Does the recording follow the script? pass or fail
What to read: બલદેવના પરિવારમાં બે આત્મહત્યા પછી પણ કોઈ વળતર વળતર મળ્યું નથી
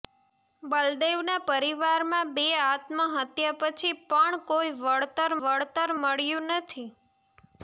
pass